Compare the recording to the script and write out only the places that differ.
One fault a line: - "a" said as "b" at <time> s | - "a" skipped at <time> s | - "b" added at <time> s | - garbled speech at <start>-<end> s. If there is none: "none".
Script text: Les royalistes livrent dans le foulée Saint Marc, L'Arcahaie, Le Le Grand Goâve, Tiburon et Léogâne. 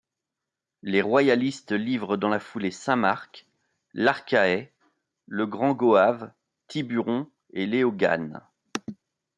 - "le" said as "la" at 2.3 s
- "Le" skipped at 5.4 s